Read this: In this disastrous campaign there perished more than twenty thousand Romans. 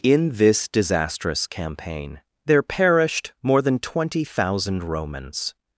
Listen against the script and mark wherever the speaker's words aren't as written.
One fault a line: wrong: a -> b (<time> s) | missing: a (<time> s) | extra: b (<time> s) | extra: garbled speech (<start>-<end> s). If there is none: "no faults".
no faults